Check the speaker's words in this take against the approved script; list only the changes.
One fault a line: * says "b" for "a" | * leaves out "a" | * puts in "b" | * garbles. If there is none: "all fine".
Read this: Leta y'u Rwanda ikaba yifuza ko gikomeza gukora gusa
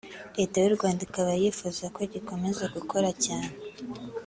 * says "cyane" for "gusa"